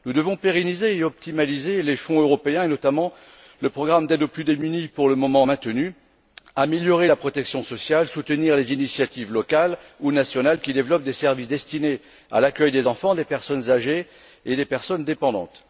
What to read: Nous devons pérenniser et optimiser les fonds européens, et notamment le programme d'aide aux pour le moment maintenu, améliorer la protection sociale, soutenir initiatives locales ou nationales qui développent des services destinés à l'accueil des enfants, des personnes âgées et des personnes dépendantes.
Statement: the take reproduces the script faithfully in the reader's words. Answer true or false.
false